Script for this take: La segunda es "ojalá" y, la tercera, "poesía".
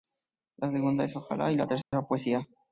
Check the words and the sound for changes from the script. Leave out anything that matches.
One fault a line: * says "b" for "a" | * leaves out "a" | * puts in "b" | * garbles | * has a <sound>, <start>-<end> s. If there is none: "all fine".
* has a dropout, 1.8-1.9 s